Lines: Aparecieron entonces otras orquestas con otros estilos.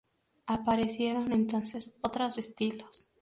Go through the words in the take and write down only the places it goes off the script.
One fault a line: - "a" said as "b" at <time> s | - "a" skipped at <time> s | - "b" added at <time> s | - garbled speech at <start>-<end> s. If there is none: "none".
- "orquestas con otros" skipped at 2.4 s